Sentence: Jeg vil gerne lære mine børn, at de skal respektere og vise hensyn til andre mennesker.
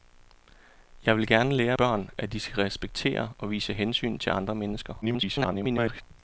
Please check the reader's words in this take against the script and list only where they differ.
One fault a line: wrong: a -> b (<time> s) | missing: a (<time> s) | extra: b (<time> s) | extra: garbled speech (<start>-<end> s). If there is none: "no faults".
missing: mine (1.8 s)
extra: garbled speech (5.0-6.0 s)